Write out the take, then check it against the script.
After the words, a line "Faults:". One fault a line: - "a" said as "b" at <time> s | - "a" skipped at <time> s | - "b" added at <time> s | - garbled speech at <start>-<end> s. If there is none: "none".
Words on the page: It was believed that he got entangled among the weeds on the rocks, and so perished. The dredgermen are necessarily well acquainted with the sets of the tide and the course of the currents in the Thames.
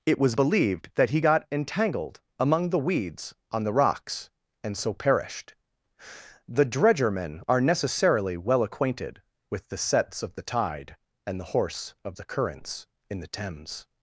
It was believed that he got entangled among the weeds on the rocks, and so perished. The dredgermen are necessarily well acquainted with the sets of the tide and the horse of the currents in the Thames.
Faults:
- "course" said as "horse" at 11.4 s